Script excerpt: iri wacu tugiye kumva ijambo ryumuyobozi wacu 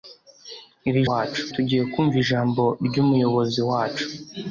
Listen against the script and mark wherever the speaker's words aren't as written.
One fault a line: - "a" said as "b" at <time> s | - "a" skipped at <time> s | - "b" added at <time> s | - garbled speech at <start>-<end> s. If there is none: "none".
none